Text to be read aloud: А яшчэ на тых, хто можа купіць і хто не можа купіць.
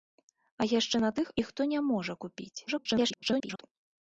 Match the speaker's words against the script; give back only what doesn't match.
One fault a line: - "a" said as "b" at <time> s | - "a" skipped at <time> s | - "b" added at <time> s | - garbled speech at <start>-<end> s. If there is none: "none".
- "хто можа купіць" skipped at 1.3 s
- garbled speech at 2.7-3.6 s